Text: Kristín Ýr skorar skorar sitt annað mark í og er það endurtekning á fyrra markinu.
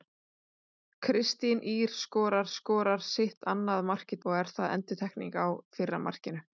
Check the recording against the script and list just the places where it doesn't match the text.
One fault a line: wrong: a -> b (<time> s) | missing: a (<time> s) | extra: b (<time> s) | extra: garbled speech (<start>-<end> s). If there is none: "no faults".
no faults